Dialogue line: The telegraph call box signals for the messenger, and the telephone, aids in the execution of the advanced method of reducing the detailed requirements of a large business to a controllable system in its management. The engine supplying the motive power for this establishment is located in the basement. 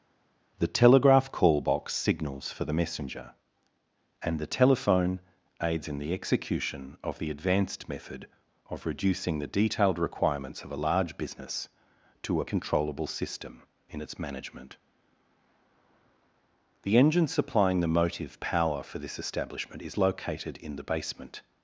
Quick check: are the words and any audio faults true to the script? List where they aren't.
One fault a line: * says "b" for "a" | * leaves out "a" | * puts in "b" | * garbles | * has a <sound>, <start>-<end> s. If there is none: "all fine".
all fine